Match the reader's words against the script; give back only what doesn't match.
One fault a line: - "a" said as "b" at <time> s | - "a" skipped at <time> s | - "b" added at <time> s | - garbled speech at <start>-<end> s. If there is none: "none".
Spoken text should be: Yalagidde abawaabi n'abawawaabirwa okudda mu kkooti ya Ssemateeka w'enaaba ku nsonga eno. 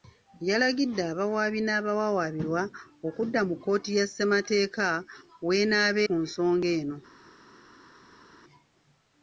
none